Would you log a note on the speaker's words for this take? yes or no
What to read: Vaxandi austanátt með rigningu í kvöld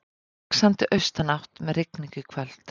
no